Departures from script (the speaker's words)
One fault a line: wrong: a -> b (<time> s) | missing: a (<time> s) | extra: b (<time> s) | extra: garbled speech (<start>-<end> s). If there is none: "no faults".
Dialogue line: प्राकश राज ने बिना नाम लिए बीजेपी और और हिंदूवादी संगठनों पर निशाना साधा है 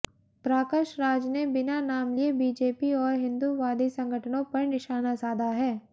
missing: और (3.1 s)